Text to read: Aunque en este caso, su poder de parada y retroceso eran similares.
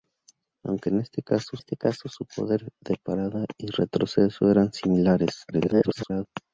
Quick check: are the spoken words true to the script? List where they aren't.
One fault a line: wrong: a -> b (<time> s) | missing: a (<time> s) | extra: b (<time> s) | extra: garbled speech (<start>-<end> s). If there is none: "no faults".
extra: este caso (1.6 s)
extra: garbled speech (5.5-6.3 s)